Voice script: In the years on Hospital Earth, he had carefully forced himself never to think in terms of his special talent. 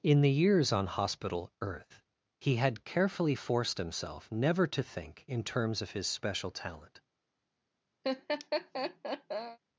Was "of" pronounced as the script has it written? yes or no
yes